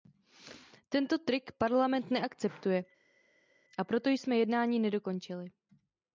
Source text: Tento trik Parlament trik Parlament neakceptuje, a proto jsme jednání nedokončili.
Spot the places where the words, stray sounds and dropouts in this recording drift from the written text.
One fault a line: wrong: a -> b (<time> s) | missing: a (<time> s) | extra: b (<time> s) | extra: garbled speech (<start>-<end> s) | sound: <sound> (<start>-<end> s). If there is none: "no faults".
missing: trik Parlament (2.1 s)